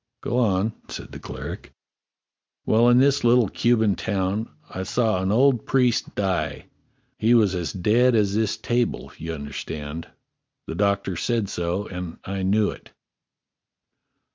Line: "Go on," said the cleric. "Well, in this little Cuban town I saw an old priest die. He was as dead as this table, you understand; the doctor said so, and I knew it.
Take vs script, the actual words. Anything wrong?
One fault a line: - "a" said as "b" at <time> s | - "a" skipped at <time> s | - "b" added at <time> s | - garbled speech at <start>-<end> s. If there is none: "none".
none